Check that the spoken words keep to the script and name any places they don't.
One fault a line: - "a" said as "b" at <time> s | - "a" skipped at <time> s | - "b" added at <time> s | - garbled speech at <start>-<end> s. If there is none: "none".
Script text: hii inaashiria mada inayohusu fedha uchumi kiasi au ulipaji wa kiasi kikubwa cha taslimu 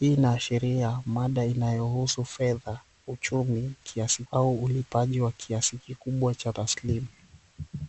none